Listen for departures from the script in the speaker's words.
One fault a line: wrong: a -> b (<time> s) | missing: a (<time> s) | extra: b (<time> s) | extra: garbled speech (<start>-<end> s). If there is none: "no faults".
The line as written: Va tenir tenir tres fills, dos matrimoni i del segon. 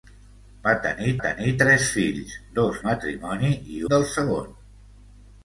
no faults